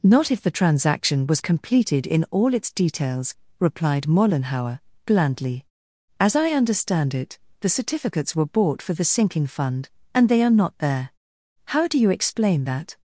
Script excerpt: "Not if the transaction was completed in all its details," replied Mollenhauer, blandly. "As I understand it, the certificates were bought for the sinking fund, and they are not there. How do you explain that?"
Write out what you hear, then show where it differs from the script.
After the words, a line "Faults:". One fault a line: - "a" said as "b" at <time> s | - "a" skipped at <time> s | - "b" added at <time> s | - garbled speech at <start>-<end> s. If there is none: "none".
"Not if the transaction was completed in all its details," replied Mollenhauer, blandly. "As I understand it, the certificates were bought for the sinking fund, and they are not there. How do you explain that?"
Faults:
none